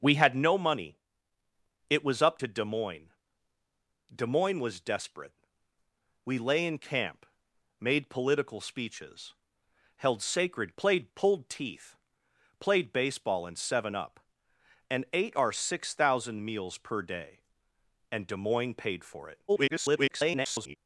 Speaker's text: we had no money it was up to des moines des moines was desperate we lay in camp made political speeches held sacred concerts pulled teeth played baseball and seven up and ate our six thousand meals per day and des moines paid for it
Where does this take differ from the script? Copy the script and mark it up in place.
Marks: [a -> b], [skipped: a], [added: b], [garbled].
we had no money it was up to des moines des moines was desperate we lay in camp made political speeches held sacred [concerts -> played] pulled teeth played baseball and seven up and ate our six thousand meals per day and des moines paid for it [garbled]